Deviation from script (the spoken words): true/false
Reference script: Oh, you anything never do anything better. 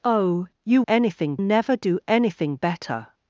false